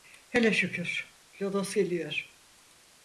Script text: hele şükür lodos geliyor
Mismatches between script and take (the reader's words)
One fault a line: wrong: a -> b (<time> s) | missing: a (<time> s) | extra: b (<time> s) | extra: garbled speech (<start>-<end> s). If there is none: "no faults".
no faults